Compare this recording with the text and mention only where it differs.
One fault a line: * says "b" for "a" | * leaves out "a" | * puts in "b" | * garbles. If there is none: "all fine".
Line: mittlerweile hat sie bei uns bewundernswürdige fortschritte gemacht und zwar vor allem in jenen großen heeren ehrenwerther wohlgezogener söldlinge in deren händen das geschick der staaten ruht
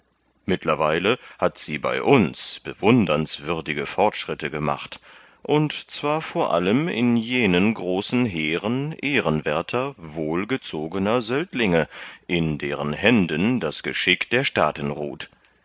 all fine